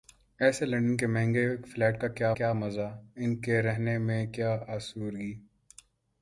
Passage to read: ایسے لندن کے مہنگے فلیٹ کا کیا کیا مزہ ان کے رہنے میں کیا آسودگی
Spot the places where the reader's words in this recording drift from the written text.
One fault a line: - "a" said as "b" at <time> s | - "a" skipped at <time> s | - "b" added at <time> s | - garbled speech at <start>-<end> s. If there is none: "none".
none